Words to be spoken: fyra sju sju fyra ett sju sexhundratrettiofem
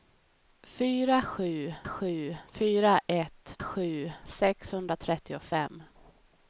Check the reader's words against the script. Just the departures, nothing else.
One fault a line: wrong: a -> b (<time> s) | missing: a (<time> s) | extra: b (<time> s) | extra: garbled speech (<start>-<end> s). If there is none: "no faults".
no faults